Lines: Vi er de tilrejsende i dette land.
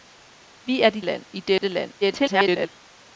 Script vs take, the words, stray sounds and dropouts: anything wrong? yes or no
yes